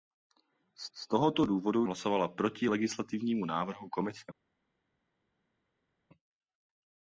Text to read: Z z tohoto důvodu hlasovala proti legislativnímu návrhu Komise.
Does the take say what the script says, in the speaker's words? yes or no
yes